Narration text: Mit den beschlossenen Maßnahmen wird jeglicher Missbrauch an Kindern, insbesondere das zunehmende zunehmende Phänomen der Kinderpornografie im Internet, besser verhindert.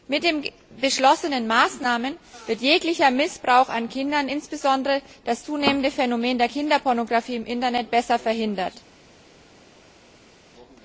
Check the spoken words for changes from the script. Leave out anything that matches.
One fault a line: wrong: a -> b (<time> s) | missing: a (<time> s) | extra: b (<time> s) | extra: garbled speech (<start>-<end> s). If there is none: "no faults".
missing: zunehmende (5.9 s)